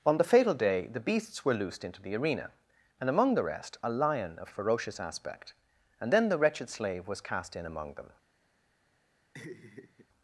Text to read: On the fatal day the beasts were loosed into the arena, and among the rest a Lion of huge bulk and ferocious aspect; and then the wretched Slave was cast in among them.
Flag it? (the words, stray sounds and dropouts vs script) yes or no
yes